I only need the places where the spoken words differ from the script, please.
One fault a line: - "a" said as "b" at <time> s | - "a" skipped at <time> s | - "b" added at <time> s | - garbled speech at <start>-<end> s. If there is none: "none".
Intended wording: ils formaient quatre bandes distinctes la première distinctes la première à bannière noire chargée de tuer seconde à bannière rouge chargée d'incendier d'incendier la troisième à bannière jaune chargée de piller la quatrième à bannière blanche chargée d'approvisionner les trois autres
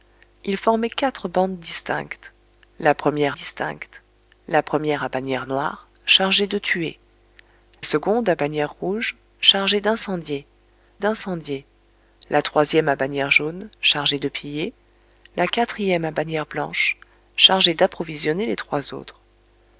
none